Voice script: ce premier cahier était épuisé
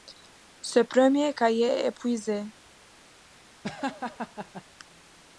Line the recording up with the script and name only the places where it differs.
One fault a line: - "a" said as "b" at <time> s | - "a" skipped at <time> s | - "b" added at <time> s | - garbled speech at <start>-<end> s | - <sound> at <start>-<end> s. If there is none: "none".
- "était" said as "est" at 1.6 s
- laugh at 3.6-4.6 s